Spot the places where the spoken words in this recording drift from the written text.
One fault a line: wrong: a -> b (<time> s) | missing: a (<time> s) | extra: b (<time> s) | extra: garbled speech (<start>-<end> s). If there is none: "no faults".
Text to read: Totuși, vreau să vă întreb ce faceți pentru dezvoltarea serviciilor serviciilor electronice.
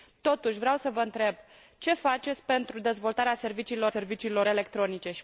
no faults